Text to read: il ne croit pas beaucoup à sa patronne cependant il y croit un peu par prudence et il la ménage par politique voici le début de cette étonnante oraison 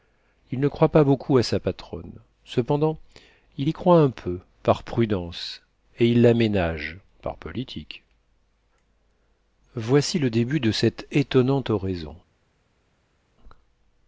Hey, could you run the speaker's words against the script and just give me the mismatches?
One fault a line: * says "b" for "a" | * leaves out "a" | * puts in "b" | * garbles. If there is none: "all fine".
all fine